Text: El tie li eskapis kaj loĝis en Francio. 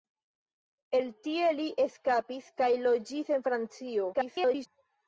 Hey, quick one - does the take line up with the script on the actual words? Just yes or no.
no